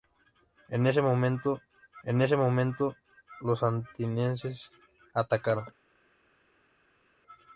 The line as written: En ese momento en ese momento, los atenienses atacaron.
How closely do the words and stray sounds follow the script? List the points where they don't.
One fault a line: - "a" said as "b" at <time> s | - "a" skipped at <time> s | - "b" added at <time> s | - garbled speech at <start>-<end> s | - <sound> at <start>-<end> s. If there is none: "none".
none